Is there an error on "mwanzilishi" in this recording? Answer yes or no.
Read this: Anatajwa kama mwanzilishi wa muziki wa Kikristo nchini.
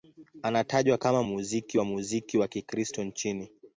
yes